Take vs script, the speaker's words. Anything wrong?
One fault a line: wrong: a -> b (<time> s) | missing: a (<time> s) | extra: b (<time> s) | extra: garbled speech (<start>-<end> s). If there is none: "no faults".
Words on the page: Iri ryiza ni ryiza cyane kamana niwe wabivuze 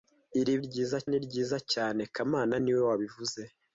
no faults